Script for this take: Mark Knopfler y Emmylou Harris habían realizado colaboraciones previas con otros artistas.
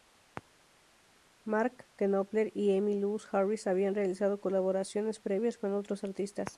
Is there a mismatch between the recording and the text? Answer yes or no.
no